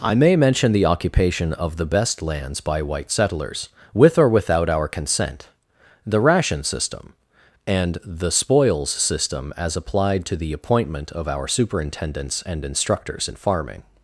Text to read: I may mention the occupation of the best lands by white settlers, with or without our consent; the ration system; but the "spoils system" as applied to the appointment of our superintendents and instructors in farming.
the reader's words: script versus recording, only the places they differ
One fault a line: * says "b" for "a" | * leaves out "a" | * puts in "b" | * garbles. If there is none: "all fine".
* says "and" for "but"